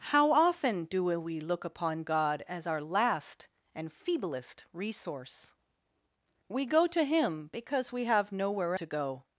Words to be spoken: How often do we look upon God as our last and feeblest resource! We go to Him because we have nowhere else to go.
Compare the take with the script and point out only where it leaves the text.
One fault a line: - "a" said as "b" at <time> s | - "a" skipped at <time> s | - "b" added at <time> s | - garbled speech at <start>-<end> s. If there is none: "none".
- "else" skipped at 8.8 s